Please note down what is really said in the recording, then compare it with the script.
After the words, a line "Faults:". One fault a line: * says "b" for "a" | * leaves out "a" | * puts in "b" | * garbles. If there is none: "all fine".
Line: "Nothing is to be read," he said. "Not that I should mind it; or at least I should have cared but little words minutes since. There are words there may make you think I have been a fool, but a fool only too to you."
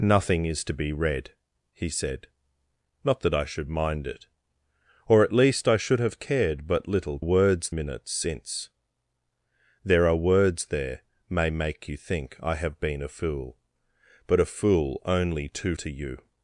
"Nothing is to be read," he said. "Not that I should mind it; or at least I should have cared but little words minutes since. There are words there may make you think I have been a fool, but a fool only too to you."
Faults:
all fine